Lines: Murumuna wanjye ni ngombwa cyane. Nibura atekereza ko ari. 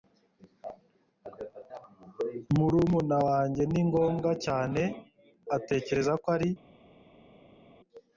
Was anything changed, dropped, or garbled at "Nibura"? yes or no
yes